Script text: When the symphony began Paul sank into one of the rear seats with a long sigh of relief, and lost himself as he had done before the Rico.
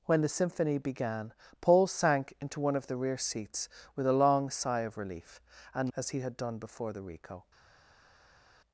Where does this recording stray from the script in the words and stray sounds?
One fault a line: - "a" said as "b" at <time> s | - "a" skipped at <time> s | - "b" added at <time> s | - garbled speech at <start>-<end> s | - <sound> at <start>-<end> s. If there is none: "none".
- "lost himself" skipped at 5.9 s